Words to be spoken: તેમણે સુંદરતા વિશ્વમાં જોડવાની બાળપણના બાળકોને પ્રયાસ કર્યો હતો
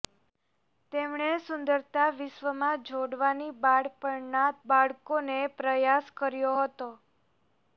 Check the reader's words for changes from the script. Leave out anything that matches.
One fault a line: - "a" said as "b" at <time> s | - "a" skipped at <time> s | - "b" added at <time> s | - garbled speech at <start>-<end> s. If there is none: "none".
none